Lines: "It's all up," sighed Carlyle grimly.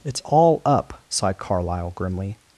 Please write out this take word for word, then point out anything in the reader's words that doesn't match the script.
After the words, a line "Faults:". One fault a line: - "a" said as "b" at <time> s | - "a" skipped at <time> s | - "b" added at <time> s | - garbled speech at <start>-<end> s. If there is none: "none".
"It's all up," sighed Carlyle grimly.
Faults:
none